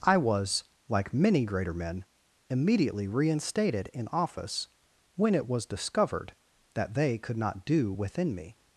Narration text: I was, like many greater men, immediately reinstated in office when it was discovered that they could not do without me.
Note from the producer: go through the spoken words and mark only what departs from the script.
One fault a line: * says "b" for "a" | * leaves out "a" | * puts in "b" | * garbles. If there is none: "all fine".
* says "within" for "without"